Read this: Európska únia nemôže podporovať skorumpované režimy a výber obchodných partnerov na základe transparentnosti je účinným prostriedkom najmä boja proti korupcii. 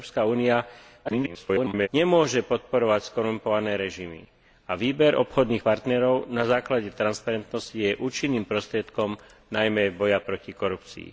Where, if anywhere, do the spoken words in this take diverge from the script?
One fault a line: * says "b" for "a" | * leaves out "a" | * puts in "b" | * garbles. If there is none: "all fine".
* garbles